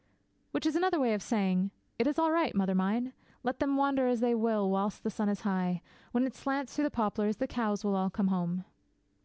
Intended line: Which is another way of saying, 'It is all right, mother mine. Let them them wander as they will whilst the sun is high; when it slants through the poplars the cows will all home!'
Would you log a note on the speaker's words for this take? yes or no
yes